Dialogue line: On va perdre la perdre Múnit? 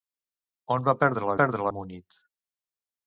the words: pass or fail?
pass